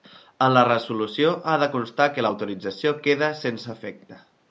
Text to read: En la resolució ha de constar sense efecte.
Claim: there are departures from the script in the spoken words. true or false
true